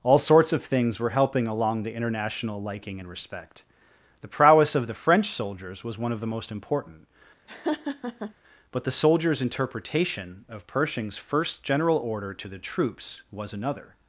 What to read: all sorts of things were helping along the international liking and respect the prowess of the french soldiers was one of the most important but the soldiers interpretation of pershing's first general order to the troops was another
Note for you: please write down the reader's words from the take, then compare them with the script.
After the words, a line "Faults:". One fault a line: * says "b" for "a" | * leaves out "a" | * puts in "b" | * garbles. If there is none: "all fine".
all sorts of things were helping along the international liking and respect the prowess of the french soldiers was one of the most important but the soldiers interpretation of pershing's first general order to the troops was another
Faults:
all fine